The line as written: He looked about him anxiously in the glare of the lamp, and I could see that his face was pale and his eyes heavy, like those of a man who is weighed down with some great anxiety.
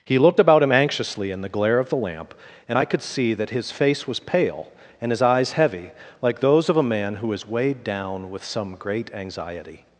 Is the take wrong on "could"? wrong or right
right